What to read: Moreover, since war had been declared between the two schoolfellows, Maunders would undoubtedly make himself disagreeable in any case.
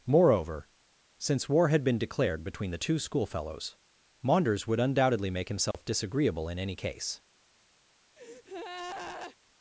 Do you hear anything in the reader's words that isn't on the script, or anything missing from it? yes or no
no